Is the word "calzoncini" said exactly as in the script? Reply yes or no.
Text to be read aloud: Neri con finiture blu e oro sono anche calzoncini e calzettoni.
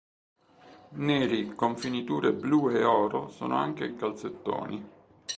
no